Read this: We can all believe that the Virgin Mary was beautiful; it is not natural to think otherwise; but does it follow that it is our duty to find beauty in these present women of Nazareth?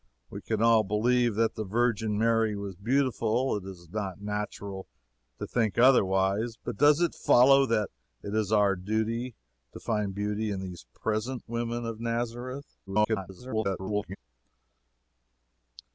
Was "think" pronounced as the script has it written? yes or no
yes